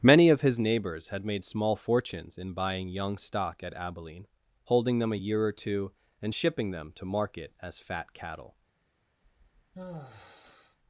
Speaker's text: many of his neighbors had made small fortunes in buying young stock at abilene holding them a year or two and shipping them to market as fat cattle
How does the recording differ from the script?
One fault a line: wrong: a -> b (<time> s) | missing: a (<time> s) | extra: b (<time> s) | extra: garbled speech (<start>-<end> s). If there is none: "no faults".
no faults